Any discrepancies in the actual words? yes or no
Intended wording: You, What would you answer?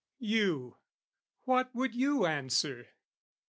no